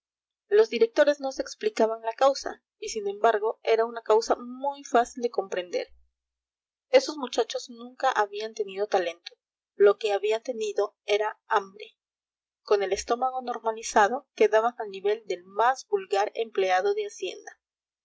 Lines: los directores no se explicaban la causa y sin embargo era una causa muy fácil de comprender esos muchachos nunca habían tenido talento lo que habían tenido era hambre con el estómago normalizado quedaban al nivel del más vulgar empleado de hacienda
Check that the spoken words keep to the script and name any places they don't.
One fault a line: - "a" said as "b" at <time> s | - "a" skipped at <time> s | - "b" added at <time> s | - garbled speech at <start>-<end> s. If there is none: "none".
none